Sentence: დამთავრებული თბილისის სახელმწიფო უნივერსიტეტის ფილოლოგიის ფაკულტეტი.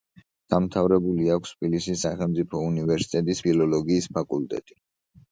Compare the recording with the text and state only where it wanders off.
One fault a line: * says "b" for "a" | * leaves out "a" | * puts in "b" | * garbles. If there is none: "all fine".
* puts in "აქვს"